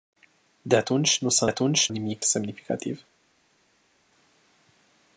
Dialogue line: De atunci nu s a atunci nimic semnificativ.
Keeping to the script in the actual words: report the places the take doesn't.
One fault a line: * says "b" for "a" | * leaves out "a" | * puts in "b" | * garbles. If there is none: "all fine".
all fine